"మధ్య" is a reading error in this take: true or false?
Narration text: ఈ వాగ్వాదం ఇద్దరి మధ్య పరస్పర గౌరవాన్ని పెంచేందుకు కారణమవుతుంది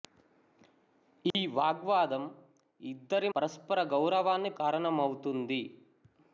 true